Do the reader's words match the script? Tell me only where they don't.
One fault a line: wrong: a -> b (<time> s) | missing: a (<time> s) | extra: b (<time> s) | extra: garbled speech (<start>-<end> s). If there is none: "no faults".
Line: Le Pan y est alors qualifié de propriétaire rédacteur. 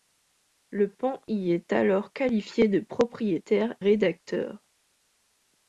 no faults